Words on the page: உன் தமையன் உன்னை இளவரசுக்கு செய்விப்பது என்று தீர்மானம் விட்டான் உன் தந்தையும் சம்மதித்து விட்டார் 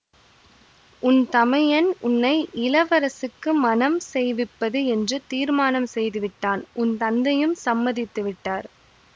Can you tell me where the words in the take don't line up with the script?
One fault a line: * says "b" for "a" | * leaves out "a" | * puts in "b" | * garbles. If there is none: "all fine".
* puts in "மணம்"
* puts in "செய்து"